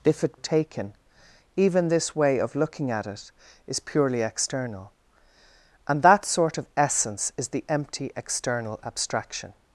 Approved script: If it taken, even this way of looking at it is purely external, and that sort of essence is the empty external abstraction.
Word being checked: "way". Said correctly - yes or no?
yes